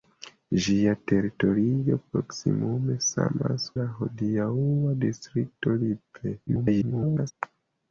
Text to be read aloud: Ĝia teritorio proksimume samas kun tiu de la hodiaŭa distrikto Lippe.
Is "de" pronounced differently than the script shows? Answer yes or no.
yes